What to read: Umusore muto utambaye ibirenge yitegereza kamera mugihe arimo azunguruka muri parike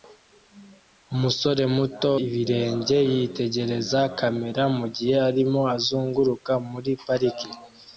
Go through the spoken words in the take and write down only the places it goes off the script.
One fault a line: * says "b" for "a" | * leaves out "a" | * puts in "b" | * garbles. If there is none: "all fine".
* leaves out "utambaye"